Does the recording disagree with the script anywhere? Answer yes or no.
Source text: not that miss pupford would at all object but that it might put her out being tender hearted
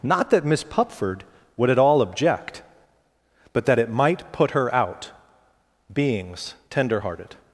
yes